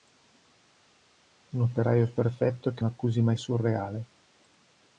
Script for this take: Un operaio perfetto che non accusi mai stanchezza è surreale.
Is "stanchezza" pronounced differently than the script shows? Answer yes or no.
yes